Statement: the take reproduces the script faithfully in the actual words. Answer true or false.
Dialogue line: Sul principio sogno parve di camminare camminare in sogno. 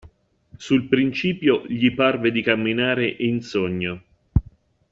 false